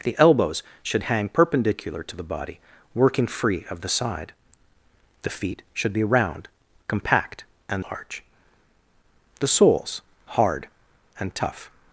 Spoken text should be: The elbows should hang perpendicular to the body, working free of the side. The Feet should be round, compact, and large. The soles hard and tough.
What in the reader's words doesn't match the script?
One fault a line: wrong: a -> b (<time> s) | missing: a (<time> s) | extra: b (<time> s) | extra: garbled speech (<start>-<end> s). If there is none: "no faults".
no faults